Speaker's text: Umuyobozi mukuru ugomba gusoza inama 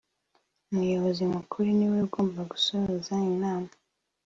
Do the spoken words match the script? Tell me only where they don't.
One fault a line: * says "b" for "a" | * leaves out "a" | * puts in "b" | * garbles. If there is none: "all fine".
* puts in "niwe"